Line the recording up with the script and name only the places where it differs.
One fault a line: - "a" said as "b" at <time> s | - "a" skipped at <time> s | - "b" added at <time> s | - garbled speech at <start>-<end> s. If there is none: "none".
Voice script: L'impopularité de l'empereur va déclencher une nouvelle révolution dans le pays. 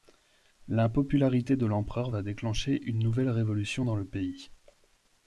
none